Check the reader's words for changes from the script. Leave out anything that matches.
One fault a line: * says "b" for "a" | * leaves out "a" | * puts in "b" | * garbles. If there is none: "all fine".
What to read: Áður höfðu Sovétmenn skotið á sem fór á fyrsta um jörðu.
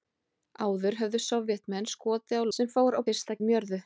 all fine